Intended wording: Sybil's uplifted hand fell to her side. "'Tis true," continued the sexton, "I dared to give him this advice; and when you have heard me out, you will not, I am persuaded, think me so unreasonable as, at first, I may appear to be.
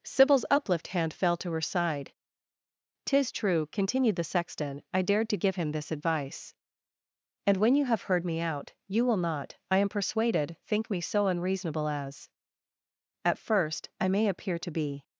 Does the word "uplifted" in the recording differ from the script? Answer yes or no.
yes